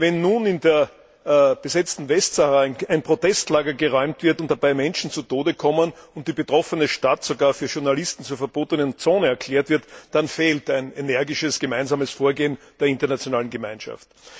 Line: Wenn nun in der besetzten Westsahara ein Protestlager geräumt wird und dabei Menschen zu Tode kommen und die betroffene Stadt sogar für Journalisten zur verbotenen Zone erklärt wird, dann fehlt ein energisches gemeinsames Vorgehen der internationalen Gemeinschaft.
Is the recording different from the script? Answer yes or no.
no